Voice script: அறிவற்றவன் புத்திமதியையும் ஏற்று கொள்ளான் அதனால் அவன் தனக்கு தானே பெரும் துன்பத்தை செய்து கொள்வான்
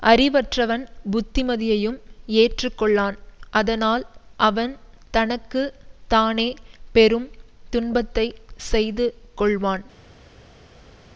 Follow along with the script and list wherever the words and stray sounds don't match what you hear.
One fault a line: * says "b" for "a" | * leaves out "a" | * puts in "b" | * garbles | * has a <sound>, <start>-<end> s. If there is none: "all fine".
all fine